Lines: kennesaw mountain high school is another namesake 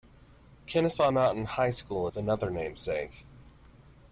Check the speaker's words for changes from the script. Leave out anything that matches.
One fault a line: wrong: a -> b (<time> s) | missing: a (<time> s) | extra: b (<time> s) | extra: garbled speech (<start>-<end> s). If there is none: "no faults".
no faults